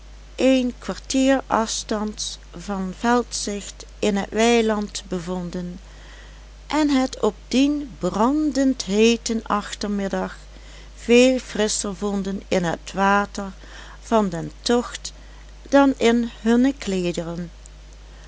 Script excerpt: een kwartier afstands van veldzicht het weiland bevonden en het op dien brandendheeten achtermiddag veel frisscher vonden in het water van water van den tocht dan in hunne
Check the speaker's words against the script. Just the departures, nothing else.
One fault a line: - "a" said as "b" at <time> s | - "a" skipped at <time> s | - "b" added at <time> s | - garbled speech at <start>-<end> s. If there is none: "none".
- "in" added at 4.0 s
- "water van" skipped at 14.3 s